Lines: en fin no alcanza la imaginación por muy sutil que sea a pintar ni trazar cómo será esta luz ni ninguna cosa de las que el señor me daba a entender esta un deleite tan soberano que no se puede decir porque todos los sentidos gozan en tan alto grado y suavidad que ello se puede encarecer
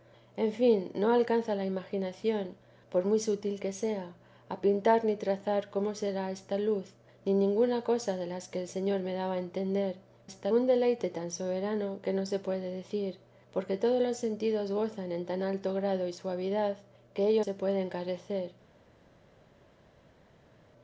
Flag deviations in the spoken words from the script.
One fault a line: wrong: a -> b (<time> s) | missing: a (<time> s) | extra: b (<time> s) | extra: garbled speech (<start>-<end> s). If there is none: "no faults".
no faults